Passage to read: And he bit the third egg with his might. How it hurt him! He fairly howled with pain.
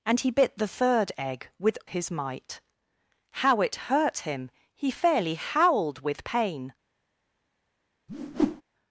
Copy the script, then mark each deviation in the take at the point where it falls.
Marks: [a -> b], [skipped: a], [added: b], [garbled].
And he bit the third egg with his might. How it hurt him! He fairly howled with pain.